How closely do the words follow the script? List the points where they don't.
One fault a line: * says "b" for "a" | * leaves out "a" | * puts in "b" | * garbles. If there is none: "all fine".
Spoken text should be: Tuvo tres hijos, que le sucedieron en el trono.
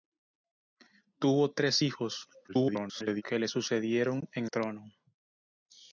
* garbles
* leaves out "el"